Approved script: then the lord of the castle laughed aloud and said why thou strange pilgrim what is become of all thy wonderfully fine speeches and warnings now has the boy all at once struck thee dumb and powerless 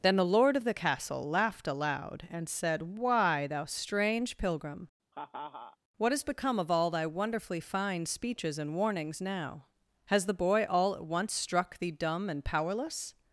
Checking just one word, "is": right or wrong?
wrong